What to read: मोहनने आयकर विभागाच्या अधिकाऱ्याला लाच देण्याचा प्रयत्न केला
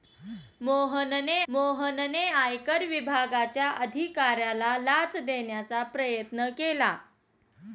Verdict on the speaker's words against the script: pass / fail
fail